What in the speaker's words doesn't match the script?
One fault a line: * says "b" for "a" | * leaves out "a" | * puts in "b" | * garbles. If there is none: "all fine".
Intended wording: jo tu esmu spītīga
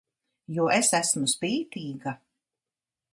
* says "es" for "tu"